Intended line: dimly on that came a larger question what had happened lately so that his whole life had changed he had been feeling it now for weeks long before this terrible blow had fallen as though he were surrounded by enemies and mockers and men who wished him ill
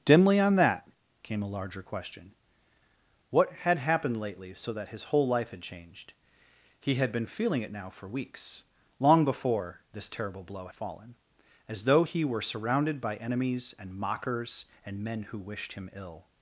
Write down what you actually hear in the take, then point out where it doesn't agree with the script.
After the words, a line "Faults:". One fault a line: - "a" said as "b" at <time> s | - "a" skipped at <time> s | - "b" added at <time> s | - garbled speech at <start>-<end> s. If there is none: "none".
dimly on that came a larger question what had happened lately so that his whole life had changed he had been feeling it now for weeks long before this terrible blow fallen as though he were surrounded by enemies and mockers and men who wished him ill
Faults:
- "had" skipped at 10.7 s